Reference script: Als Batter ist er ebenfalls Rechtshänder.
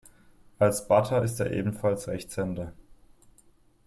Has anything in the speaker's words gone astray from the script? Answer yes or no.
no